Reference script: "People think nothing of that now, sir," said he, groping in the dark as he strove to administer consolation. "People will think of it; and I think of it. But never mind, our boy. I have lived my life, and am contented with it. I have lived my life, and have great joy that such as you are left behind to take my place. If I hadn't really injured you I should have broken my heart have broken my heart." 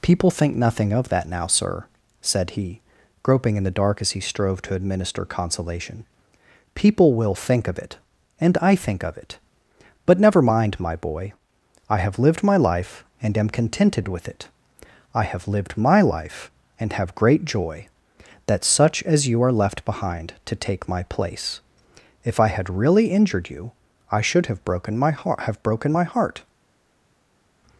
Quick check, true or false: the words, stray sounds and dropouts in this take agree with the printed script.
false